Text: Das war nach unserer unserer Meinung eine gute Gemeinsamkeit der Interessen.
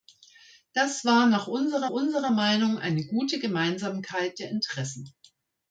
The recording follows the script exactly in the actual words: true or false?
true